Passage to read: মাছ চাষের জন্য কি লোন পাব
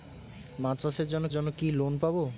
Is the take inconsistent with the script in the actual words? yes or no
yes